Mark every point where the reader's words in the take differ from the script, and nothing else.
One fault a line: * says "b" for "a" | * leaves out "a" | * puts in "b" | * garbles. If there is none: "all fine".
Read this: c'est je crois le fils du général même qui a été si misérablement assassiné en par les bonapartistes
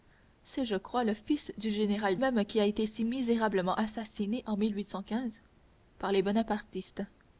all fine